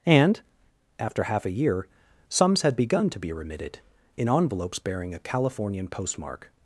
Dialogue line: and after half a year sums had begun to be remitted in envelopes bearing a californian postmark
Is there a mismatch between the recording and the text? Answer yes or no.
no